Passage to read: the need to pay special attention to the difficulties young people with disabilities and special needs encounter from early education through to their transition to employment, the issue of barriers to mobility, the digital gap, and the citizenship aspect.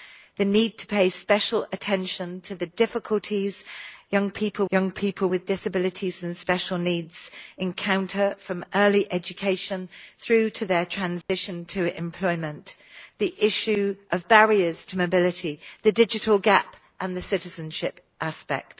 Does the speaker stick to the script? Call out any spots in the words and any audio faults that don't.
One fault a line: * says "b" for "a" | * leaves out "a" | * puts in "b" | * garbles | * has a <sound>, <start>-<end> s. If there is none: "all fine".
* puts in "young people"
* has a dropout, 11.2-11.3 s